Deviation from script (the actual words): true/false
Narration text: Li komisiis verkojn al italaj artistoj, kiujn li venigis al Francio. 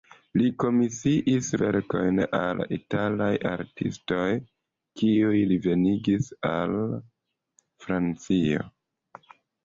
false